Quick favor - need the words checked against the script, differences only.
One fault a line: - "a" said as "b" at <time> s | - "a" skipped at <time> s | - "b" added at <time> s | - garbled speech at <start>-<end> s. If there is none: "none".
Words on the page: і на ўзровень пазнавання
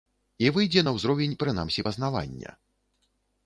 - "выйдзе" added at 0.6 s
- "прынамсі" added at 1.4 s